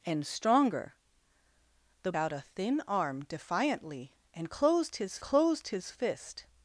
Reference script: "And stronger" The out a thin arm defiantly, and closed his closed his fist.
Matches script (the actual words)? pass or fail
pass